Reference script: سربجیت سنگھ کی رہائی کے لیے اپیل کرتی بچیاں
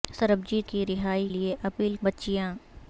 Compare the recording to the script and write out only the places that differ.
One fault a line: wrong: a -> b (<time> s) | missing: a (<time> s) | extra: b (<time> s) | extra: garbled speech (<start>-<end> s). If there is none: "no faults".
missing: سنگھ (0.7 s)
missing: کے (1.3 s)
missing: کرتی (1.9 s)